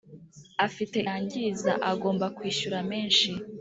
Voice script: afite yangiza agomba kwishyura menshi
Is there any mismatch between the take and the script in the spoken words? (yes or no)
no